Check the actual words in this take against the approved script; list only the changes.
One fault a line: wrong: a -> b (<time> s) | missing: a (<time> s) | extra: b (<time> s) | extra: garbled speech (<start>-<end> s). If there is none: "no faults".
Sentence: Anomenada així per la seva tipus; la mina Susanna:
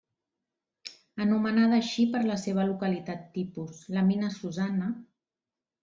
extra: localitat (2.7 s)